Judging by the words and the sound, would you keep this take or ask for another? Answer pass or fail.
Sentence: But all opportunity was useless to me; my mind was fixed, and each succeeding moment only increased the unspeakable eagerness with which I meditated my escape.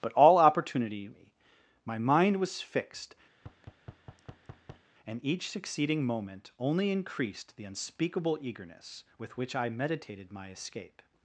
fail